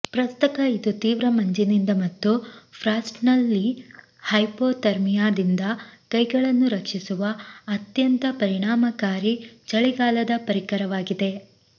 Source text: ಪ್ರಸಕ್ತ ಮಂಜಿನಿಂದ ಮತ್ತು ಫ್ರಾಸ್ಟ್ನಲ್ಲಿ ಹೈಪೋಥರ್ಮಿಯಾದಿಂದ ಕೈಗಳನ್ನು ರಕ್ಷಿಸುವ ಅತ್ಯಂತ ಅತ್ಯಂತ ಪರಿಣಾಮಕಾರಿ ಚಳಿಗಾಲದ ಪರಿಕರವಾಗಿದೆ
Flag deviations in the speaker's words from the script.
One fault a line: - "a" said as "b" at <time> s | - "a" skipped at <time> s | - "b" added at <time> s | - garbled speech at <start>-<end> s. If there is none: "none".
- "ಇದು ತೀವ್ರ" added at 0.7 s
- "ಅತ್ಯಂತ" skipped at 8.2 s